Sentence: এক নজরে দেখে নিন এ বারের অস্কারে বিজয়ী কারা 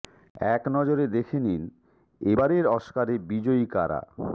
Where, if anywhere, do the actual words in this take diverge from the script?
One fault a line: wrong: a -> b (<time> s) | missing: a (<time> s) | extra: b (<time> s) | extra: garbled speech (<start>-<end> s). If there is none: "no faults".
no faults